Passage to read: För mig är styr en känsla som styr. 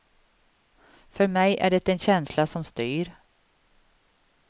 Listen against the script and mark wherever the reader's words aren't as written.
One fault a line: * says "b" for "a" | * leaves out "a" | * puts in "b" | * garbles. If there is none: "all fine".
* says "det" for "styr"